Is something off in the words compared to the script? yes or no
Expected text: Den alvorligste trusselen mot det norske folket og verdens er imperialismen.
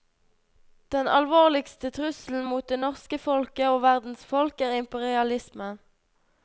yes